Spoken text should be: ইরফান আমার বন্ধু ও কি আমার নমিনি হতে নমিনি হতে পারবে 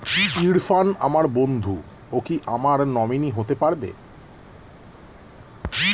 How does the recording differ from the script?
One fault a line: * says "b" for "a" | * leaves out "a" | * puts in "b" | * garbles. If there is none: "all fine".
* leaves out "নমিনি হতে"